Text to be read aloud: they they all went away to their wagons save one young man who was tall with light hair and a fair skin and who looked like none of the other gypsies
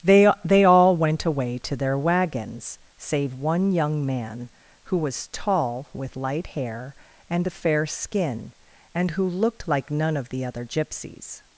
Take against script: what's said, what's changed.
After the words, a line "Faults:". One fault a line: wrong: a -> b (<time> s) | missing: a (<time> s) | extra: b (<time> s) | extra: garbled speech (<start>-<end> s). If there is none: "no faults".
they they all went away to their wagons save one young man who was tall with light hair and a fair skin and who looked like none of the other gypsies
Faults:
no faults